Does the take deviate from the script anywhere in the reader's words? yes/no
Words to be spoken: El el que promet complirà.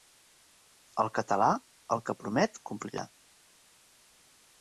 yes